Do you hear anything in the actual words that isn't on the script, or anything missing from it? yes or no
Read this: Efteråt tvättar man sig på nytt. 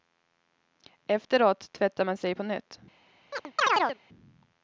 no